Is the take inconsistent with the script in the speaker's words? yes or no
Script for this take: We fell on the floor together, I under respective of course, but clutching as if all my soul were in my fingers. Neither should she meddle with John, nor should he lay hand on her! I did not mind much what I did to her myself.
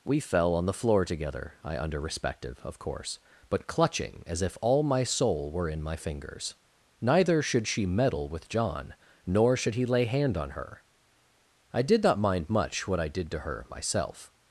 no